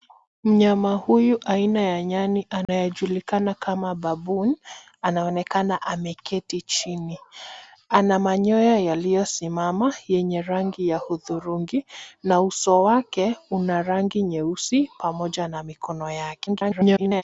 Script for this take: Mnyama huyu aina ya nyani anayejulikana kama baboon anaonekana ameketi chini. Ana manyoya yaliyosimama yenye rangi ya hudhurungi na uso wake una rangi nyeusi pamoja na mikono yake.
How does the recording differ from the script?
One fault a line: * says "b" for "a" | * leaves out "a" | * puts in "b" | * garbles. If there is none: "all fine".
* garbles